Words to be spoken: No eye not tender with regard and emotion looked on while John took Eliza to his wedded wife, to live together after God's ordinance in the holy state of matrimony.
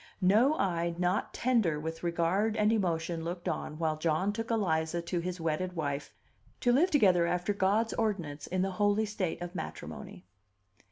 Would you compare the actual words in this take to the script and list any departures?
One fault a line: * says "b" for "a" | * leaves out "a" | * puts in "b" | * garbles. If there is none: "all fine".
all fine